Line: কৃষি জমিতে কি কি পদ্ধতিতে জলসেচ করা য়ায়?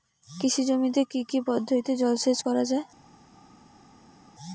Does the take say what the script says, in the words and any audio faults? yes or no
yes